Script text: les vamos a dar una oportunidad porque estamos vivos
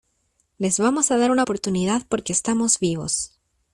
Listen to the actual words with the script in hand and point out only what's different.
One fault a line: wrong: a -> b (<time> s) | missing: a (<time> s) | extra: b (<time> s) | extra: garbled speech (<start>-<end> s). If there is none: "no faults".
no faults